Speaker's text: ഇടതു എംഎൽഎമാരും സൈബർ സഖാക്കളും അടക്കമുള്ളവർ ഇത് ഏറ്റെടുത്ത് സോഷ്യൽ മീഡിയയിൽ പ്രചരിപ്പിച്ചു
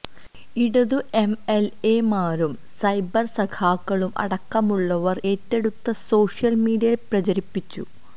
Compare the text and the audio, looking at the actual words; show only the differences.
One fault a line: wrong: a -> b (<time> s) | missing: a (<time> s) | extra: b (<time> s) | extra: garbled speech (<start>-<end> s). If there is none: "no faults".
missing: ഇത് (5.2 s)